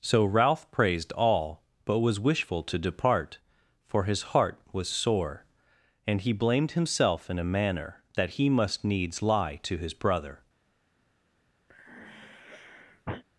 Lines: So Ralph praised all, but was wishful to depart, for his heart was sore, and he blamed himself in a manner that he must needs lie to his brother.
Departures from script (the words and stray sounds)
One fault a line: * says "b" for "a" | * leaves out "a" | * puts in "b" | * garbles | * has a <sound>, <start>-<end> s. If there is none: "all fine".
* has a sigh, 11.7-13.2 s